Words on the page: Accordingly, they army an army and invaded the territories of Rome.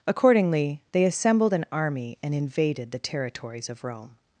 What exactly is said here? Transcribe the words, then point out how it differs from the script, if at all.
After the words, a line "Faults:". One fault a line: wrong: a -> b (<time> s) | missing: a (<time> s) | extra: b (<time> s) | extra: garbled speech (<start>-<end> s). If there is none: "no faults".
Accordingly, they assembled an army and invaded the territories of Rome.
Faults:
wrong: army -> assembled (1.0 s)